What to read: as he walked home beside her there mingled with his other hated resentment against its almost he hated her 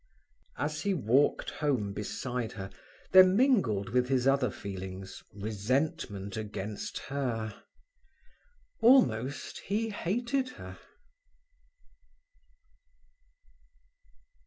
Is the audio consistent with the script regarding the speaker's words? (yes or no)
no